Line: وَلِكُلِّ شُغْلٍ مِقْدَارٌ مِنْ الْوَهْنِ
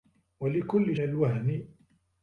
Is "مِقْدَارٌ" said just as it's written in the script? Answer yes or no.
no